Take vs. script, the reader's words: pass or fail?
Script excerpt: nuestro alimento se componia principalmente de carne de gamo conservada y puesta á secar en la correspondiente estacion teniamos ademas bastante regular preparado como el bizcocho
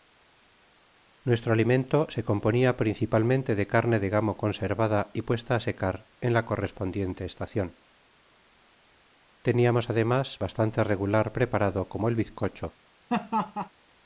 pass